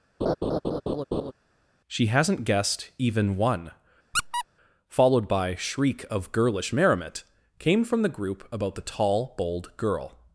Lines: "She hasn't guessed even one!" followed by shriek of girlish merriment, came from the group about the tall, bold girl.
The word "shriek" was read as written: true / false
true